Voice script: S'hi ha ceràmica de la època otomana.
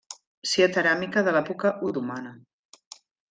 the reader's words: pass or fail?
pass